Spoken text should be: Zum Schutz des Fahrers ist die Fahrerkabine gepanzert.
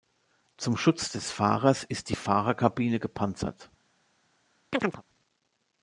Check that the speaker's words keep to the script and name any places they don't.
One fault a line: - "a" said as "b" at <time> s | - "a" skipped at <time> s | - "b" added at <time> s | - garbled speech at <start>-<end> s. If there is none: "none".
none